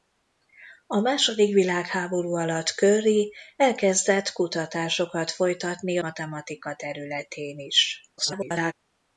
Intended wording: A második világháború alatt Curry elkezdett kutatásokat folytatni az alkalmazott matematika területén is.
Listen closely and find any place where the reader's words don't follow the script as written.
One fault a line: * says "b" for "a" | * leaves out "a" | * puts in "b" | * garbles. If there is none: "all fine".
* leaves out "az alkalmazott"
* garbles